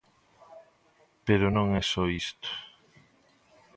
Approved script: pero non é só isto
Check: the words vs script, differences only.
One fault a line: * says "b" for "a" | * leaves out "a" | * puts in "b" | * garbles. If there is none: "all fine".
all fine